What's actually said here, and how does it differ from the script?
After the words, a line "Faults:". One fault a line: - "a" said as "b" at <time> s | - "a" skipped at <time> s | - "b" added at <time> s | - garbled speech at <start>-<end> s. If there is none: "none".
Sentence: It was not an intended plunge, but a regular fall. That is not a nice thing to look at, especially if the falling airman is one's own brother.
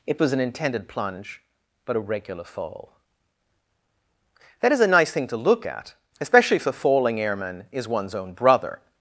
It was an intended plunge, but a regular fall. That is a nice thing to look at, especially if the falling airman is one's own brother.
Faults:
- "not" skipped at 0.3 s
- "not" skipped at 4.8 s